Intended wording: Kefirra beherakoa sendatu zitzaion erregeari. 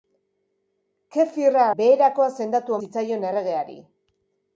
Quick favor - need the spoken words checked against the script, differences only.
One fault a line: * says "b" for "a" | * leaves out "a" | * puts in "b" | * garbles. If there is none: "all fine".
all fine